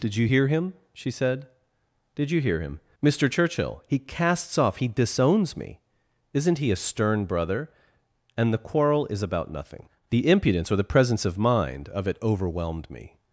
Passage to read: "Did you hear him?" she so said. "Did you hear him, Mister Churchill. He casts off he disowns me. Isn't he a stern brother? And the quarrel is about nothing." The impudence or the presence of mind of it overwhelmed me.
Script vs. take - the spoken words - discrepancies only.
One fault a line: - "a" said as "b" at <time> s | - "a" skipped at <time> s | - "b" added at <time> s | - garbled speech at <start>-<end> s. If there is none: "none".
- "so" skipped at 1.1 s